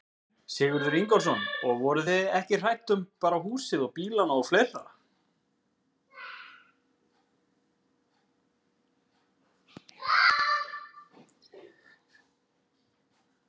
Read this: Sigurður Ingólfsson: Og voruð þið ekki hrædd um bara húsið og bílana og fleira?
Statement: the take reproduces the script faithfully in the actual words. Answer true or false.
true